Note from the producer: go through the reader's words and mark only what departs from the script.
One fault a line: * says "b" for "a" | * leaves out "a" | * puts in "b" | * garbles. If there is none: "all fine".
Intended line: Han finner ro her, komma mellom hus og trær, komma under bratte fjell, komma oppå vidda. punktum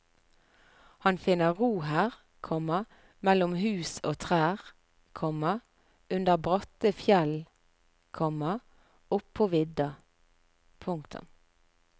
all fine